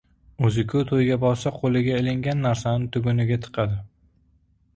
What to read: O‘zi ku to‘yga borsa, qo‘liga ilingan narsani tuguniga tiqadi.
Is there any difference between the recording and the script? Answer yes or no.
no